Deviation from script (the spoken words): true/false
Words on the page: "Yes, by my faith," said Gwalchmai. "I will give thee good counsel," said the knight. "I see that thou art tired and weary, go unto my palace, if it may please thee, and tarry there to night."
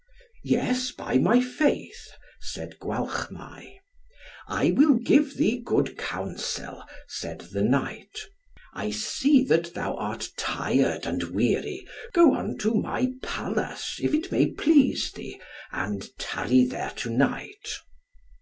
false